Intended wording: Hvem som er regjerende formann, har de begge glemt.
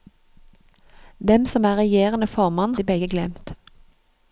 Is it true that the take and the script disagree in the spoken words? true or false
true